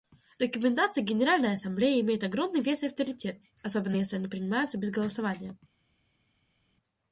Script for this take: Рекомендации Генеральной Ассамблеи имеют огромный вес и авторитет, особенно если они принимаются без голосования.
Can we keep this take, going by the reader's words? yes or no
yes